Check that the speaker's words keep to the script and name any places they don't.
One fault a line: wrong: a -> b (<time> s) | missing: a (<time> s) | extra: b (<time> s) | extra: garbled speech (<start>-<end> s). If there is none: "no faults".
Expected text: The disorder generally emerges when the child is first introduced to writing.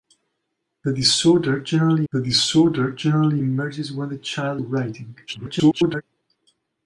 extra: the disorder generally (2.1 s)
missing: is first introduced (4.6 s)
extra: garbled speech (5.3-6.0 s)